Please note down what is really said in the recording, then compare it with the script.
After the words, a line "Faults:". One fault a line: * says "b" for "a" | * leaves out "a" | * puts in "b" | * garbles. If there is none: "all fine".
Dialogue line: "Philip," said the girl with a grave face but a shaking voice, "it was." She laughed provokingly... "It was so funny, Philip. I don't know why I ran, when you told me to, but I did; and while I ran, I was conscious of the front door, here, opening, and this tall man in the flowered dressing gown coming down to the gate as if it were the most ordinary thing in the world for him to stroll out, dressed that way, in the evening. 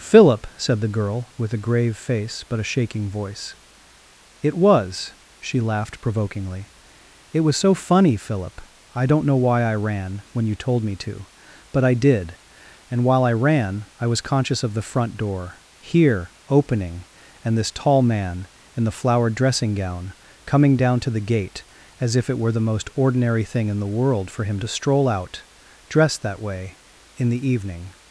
"Philip," said the girl with a grave face but a shaking voice, "it was." She laughed provokingly... "It was so funny, Philip. I don't know why I ran, when you told me to, but I did; and while I ran, I was conscious of the front door, here, opening, and this tall man in the flowered dressing gown coming down to the gate as if it were the most ordinary thing in the world for him to stroll out, dressed that way, in the evening.
Faults:
all fine